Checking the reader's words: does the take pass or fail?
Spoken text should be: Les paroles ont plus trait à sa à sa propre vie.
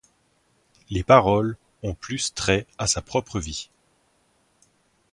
fail